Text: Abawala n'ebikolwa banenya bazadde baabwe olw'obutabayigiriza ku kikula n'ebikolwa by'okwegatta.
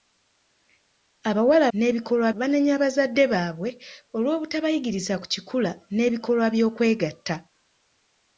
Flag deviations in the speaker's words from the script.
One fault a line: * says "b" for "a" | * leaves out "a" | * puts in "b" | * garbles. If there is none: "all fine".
all fine